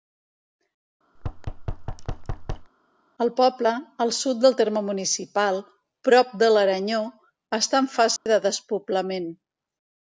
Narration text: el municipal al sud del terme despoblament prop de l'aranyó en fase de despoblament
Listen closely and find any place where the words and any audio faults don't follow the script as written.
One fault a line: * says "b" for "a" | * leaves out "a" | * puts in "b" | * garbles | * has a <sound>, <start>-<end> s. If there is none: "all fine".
* has a thud, 1.2-2.7 s
* says "poble" for "municipal"
* says "municipal" for "despoblament"
* puts in "està"
* has a dropout, 8.2-8.3 s